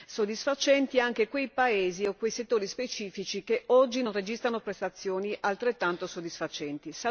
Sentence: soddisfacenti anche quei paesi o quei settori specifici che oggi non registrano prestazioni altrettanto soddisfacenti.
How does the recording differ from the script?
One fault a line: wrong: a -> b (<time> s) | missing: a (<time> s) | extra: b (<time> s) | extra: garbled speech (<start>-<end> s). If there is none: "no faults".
no faults